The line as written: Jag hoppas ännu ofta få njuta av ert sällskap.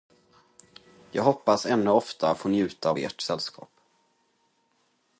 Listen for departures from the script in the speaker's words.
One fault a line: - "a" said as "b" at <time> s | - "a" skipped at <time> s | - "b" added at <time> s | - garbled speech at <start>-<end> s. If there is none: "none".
none